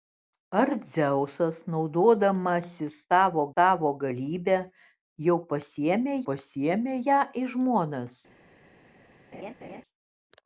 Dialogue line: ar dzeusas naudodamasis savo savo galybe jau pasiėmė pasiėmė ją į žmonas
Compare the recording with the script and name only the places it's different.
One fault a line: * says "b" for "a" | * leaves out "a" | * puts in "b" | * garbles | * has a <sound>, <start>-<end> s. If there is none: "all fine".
* has a laugh, 9.3-9.8 s